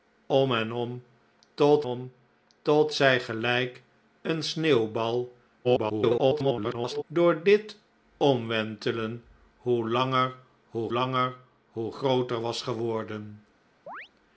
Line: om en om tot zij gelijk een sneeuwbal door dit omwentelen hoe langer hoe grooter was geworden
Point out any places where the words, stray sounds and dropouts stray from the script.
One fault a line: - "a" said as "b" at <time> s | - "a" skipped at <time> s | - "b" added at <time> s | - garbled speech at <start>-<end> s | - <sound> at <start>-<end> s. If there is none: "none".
- "om tot" added at 1.8 s
- garbled speech at 5.6-7.0 s
- "langer hoe" added at 10.9 s
- chirp at 13.9-14.1 s